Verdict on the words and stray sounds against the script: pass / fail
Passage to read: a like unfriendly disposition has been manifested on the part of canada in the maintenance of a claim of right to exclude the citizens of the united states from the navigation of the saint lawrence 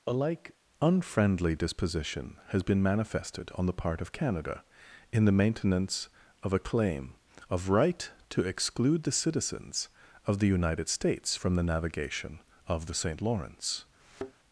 fail